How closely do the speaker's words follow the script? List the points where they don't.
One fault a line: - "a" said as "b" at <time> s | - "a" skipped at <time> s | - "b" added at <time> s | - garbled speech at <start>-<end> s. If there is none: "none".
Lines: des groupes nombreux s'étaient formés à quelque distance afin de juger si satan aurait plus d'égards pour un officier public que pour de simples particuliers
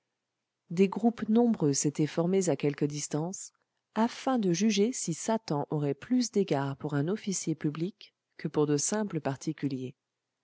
none